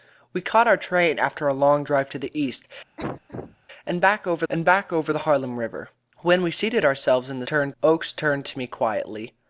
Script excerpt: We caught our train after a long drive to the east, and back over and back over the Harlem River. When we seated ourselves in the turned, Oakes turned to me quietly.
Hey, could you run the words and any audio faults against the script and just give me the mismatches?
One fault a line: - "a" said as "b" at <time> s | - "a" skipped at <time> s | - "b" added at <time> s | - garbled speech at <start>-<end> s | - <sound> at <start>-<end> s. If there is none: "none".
- cough at 3.0-3.6 s